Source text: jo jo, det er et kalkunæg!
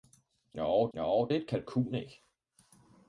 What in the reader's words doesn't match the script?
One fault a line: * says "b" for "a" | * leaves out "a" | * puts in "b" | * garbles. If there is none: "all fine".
all fine